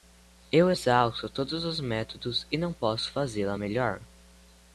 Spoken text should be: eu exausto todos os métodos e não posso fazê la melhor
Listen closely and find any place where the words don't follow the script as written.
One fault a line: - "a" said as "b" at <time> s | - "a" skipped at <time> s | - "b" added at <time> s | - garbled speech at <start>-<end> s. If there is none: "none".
none